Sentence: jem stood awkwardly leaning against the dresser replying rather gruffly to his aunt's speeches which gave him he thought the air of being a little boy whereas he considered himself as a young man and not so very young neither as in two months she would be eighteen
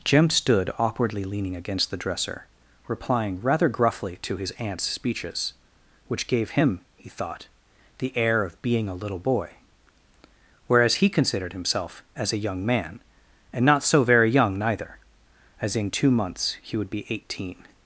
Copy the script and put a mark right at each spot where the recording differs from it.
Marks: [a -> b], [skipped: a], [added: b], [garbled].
jem stood awkwardly leaning against the dresser replying rather gruffly to his aunt's speeches which gave him he thought the air of being a little boy whereas he considered himself as a young man and not so very young neither as in two months [she -> he] would be eighteen